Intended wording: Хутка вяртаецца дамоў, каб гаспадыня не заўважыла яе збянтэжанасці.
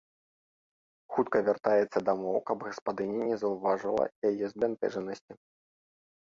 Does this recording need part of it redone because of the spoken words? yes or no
no